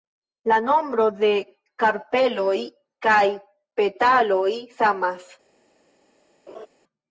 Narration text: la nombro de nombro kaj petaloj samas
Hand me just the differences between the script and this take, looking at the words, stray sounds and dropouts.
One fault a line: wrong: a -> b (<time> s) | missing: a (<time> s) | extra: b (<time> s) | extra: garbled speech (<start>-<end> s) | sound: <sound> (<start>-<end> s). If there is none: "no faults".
wrong: nombro -> karpeloj (1.8 s)
sound: laugh (6.5-6.7 s)